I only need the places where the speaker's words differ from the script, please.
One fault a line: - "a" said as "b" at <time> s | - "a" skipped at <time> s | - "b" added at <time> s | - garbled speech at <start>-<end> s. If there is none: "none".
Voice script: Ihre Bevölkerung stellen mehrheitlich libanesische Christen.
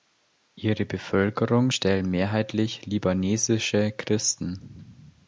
none